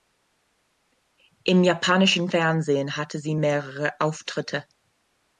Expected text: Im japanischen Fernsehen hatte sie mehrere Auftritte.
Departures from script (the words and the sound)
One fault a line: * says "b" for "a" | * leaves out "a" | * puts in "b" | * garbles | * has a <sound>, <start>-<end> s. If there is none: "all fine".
all fine